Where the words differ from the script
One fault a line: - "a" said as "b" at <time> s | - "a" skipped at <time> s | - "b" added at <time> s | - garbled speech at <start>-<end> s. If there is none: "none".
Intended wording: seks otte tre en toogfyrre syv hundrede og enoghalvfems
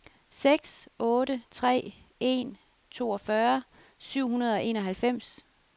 none